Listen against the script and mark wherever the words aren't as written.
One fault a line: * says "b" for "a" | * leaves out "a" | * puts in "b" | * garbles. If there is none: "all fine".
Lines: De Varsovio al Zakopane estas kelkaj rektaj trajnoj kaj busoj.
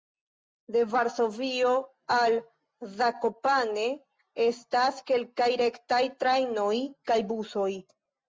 all fine